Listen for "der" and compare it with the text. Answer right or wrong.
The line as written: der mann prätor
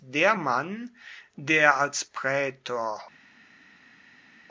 right